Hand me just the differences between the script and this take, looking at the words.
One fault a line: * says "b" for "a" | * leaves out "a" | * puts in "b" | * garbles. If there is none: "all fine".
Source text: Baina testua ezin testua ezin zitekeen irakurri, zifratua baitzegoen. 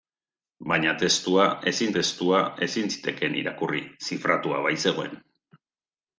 all fine